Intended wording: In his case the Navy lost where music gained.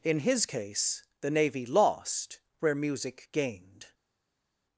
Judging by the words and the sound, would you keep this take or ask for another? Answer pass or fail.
pass